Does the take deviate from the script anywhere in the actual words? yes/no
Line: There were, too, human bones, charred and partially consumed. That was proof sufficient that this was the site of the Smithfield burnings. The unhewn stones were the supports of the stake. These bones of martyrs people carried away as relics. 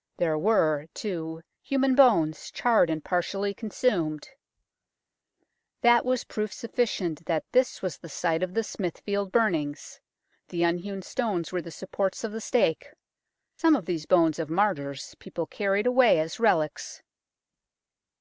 yes